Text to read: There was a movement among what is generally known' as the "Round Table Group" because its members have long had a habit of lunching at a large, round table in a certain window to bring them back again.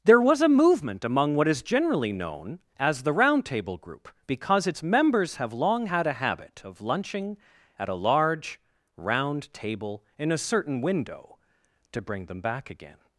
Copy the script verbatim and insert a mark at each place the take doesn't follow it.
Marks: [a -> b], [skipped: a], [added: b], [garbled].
There was a movement among what is generally known' as the "Round Table Group" because its members have long had a habit of lunching at a large, round table in a certain window to bring them back again.